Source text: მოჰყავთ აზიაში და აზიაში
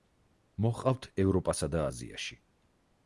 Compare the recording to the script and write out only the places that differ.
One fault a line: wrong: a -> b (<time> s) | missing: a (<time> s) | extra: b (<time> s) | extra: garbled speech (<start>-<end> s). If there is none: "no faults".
wrong: აზიაში -> ევროპასა (1.2 s)